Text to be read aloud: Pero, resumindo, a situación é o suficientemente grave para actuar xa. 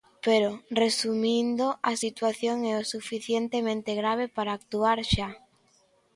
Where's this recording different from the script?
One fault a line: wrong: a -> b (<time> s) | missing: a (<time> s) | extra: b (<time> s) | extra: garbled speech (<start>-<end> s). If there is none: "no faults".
no faults